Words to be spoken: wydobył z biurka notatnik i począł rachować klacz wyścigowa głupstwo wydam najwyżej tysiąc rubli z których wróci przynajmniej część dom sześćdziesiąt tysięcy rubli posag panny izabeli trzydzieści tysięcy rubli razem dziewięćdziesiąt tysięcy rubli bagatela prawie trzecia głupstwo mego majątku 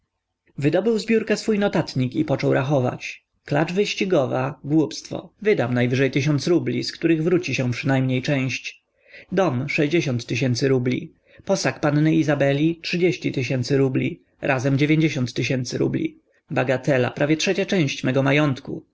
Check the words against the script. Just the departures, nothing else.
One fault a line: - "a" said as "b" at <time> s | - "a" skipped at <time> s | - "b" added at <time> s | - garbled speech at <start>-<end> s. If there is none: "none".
- "swój" added at 1.4 s
- "się" added at 7.5 s
- "głupstwo" said as "część" at 17.6 s